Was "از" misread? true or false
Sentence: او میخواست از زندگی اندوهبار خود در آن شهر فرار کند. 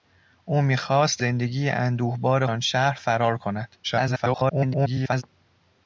true